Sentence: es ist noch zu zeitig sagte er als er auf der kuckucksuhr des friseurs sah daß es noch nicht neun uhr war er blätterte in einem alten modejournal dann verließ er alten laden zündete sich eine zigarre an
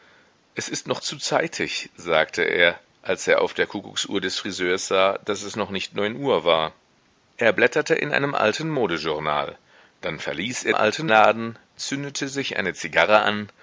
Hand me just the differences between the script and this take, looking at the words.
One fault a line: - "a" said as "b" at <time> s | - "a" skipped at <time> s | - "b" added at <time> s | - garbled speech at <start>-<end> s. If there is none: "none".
none